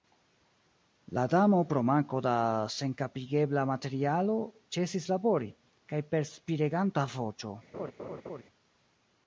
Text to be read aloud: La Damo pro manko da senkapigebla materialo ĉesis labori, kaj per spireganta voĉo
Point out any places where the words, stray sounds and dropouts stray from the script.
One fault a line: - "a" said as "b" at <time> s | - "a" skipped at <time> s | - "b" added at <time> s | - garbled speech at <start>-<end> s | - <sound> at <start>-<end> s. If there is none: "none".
- laugh at 7.7-8.4 s